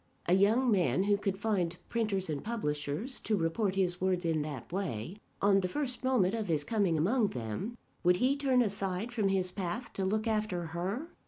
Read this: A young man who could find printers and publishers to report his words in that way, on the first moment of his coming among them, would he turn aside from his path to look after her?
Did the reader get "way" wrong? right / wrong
right